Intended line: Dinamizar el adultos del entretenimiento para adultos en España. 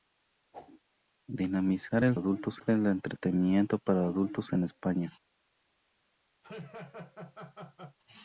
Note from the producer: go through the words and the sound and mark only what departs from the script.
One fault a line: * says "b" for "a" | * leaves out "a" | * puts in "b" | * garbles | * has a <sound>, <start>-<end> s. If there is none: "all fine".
* has a whoosh, 0.5-0.8 s
* has a laugh, 6.4-8.0 s